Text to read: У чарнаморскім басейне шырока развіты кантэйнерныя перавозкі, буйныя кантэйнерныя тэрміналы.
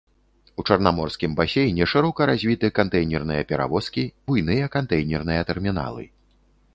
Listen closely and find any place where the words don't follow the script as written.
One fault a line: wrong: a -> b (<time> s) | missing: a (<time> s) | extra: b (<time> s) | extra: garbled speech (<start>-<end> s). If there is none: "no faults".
no faults